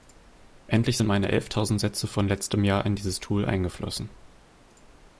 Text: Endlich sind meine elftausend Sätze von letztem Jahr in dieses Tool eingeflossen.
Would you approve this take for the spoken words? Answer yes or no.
yes